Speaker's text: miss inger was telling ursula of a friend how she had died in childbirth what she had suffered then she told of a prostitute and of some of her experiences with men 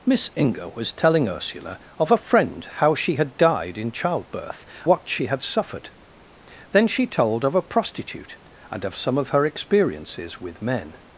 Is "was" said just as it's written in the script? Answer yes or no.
yes